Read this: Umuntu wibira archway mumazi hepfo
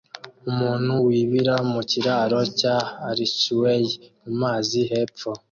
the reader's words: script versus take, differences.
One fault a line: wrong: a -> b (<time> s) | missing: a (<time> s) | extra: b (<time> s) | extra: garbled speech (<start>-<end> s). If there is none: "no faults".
extra: mu kiraro cya (1.7 s)